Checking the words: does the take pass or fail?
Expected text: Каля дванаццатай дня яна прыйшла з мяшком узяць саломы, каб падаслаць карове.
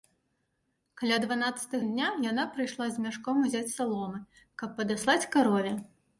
pass